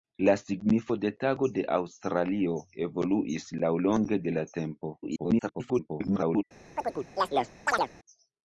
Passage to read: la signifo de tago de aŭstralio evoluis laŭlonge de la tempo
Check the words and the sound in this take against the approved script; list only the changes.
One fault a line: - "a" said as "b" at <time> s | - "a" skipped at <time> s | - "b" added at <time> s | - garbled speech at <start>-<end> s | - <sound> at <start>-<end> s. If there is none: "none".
- garbled speech at 5.0-6.4 s
- chirp at 6.8-7.9 s